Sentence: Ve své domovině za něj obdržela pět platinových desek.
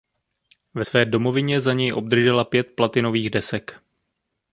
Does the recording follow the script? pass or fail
pass